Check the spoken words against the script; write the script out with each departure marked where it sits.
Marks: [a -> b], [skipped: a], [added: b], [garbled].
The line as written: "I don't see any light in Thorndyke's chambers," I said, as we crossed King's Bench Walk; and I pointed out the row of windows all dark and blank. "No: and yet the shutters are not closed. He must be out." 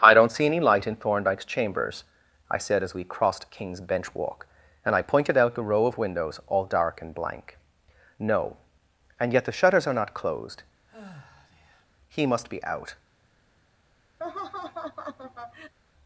"I don't see any light in Thorndyke's chambers," I said, as we crossed King's Bench Walk; and I pointed out the row of windows all dark and blank. "No: and yet the shutters are not closed. He must be out."